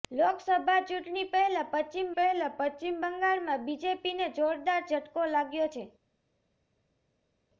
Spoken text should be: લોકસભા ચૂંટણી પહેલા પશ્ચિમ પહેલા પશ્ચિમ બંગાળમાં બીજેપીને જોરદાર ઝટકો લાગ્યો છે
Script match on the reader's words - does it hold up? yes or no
yes